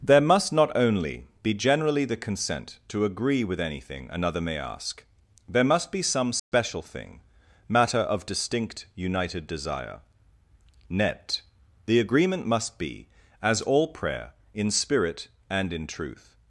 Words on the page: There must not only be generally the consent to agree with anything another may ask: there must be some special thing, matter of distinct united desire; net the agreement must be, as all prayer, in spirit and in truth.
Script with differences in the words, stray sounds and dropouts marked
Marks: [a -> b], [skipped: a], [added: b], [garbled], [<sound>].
There must not only be generally the consent to agree with anything another may ask: there must be some special [dropout] thing, matter of distinct united desire; net the agreement must be, as all prayer, in spirit and in truth.